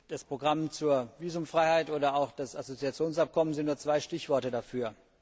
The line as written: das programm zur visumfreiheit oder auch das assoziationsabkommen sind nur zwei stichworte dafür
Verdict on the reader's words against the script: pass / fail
pass